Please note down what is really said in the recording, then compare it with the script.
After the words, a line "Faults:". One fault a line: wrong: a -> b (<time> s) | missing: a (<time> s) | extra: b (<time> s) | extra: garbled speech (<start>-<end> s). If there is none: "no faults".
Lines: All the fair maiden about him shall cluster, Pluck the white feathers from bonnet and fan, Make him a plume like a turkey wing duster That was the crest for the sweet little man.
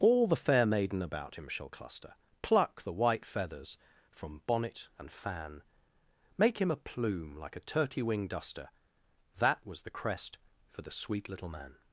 All the fair maiden about him shall cluster, Pluck the white feathers from bonnet and fan, Make him a plume like a turkey wing duster That was the crest for the sweet little man.
Faults:
no faults